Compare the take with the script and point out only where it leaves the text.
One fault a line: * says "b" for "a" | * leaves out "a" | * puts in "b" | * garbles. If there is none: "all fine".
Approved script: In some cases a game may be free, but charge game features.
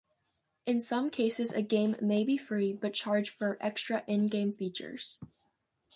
* puts in "for extra in"